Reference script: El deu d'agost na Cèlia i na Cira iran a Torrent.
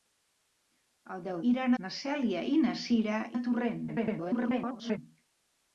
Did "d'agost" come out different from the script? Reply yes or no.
yes